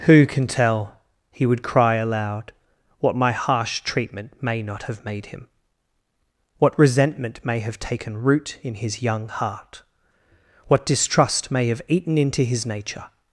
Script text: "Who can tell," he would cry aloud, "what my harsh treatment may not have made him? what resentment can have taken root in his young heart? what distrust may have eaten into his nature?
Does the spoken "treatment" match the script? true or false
true